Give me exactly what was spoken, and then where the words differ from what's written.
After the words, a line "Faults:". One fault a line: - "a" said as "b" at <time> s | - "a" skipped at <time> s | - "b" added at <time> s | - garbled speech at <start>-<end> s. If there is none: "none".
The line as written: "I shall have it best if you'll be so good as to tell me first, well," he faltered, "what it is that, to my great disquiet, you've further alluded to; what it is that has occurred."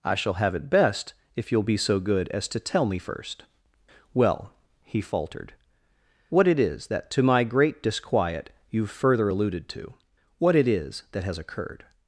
"I shall have it best if you'll be so good as to tell me first, well," he faltered, "what it is that, to my great disquiet, you've further alluded to; what it is that has occurred."
Faults:
none